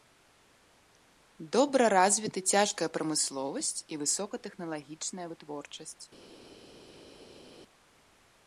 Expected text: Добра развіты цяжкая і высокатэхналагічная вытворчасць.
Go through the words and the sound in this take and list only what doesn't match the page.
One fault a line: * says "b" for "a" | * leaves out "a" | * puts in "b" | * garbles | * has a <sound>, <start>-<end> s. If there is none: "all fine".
* puts in "прамысловасць"